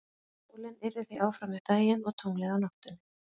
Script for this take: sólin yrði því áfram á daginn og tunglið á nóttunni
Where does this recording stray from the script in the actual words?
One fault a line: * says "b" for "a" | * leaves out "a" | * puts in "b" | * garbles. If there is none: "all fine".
all fine